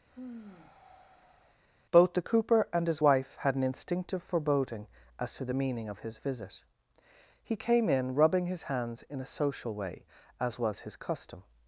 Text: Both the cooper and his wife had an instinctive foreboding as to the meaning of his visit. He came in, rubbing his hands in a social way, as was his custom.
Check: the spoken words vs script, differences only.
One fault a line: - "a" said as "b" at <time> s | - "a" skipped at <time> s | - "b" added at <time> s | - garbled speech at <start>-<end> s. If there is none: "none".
none